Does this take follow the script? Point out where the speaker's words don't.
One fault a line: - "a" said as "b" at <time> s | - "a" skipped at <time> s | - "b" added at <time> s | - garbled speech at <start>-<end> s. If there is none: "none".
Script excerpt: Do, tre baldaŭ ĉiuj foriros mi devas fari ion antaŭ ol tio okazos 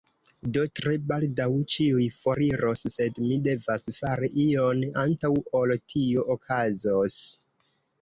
- "sed" added at 2.9 s